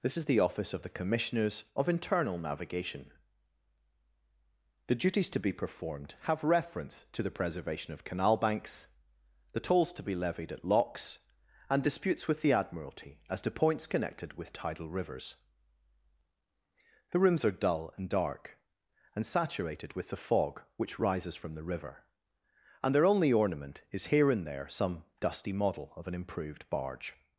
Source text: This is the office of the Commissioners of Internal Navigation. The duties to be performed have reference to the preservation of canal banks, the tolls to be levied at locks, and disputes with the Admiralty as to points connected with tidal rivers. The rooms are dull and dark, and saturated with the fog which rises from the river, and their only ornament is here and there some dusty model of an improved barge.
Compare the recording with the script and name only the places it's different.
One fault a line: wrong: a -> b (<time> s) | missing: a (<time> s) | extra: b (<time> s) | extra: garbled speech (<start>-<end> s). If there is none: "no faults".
no faults